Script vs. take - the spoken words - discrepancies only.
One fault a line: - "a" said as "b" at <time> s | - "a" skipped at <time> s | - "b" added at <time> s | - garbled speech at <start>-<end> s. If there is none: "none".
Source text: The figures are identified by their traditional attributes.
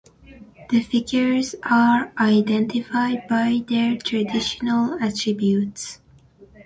none